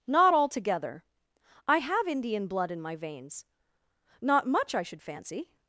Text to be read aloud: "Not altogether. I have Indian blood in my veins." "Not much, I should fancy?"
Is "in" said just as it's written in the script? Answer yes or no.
yes